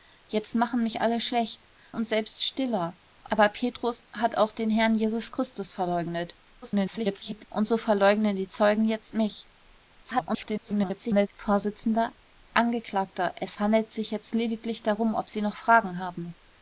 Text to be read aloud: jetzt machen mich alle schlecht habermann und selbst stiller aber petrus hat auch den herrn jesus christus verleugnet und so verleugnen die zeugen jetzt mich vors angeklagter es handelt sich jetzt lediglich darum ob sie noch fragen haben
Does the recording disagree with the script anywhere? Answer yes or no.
yes